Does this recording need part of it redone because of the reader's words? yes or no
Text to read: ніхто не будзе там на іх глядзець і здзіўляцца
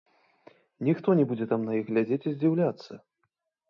no